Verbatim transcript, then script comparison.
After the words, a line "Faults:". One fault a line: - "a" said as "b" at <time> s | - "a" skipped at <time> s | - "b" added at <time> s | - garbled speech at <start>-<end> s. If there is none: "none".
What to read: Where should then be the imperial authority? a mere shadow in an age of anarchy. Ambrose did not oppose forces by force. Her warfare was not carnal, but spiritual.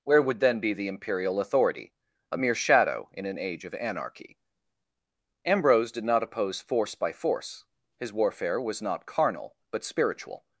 Where would then be the imperial authority? a mere shadow in an age of anarchy. Ambrose did not oppose force by force. His warfare was not carnal, but spiritual.
Faults:
- "should" said as "would" at 0.2 s
- "forces" said as "force" at 6.6 s
- "Her" said as "His" at 8.0 s